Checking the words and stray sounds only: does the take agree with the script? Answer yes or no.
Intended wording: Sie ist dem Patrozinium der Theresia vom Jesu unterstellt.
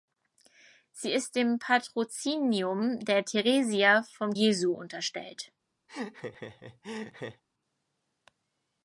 no